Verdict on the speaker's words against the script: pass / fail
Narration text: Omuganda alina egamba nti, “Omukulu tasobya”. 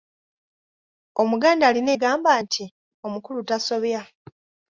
pass